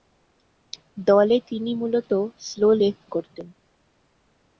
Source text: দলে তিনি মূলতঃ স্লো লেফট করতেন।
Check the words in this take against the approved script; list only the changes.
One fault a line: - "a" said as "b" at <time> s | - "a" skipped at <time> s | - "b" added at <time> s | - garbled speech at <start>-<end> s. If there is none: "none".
none